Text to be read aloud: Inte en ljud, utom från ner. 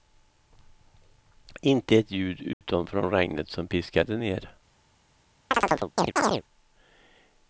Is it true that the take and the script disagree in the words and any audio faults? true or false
true